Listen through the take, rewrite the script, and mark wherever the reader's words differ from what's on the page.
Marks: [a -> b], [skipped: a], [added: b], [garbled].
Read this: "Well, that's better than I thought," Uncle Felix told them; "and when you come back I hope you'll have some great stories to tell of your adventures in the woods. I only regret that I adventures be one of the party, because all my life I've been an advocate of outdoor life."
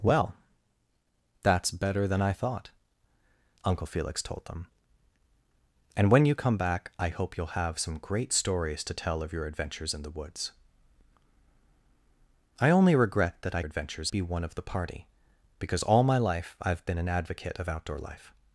"Well, that's better than I thought," Uncle Felix told them; "and when you come back I hope you'll have some great stories to tell of your adventures in the woods. I only regret that I adventures be one of the party, because all my life I've been an advocate of outdoor life."